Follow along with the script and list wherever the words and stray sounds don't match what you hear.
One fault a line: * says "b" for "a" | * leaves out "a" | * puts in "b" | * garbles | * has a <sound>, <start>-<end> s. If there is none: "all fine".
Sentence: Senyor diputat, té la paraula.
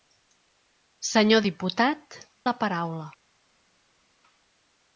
* leaves out "té"